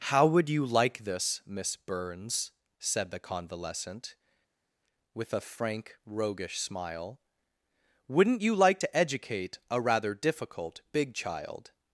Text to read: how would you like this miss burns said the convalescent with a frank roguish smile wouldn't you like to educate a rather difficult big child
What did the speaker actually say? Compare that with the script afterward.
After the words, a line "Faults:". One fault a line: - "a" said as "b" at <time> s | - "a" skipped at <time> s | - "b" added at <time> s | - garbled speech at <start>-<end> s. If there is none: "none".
how would you like this miss burns said the convalescent with a frank roguish smile wouldn't you like to educate a rather difficult big child
Faults:
none